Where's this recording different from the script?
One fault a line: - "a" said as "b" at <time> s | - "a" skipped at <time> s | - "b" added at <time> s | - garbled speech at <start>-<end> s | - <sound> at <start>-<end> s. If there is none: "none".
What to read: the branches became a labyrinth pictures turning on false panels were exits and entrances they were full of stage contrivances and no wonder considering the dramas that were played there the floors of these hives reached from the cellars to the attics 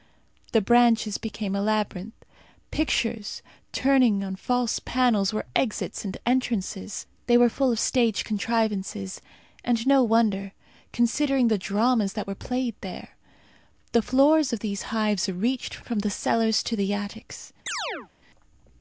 - chirp at 17.7-18.1 s